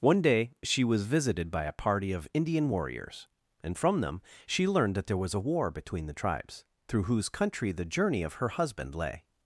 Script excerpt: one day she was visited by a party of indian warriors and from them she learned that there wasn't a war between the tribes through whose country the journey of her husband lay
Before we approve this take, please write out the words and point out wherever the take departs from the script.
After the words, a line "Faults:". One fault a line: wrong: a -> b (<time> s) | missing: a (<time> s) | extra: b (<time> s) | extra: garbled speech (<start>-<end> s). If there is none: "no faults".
one day she was visited by a party of indian warriors and from them she learned that there was a war between the tribes through whose country the journey of her husband lay
Faults:
wrong: wasn't -> was (5.2 s)